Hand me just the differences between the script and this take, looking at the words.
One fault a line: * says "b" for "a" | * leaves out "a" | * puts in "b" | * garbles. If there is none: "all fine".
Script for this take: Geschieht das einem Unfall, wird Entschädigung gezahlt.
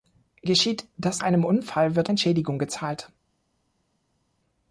all fine